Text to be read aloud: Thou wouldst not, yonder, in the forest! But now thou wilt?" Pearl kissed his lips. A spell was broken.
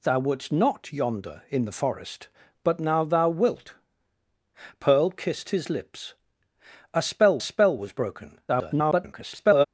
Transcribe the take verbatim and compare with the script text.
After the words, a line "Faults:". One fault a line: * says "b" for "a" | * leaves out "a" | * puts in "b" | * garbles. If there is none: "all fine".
Thou wouldst not, yonder, in the forest! But now thou wilt?" Pearl kissed his lips. A spell spell was broken. [garbled]
Faults:
* puts in "spell"
* garbles